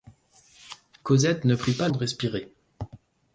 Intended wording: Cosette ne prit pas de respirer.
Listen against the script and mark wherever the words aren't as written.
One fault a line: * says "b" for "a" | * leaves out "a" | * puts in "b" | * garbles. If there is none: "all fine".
all fine